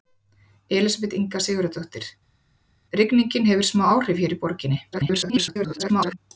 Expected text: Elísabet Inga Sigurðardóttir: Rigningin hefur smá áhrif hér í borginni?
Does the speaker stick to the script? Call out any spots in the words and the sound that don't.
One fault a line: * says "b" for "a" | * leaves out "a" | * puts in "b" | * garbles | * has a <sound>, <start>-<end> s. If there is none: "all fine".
* garbles